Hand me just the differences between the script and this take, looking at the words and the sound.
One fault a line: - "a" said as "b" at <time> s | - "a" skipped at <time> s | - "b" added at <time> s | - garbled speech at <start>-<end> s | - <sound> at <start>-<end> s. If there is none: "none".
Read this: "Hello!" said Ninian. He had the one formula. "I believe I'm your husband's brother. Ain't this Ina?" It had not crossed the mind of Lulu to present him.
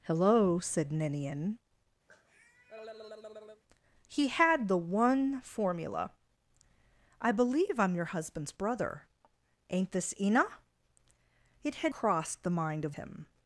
- cough at 2.1-3.6 s
- "not" skipped at 11.9 s
- "Lulu to present" skipped at 13.0 s